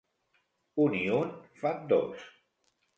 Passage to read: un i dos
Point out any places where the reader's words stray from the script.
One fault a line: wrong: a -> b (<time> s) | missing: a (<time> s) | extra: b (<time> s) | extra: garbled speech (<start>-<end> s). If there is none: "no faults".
extra: un fan (1.2 s)